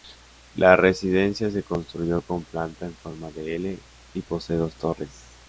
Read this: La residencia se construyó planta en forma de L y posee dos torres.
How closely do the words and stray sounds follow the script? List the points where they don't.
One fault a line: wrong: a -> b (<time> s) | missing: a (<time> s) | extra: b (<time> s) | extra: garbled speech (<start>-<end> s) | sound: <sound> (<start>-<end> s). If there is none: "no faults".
extra: con (2.2 s)